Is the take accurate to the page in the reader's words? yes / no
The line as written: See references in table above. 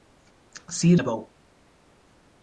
no